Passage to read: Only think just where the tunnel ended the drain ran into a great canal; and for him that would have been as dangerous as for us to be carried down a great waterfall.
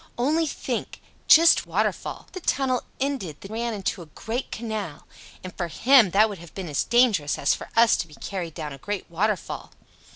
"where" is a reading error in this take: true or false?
true